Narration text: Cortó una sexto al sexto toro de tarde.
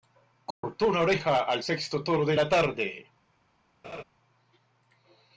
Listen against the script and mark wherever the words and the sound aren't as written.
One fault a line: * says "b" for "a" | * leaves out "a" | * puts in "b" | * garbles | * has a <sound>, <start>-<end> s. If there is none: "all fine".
* has a dropout, 0.5-0.6 s
* says "oreja" for "sexto"
* puts in "la"
* has a laugh, 3.8-4.0 s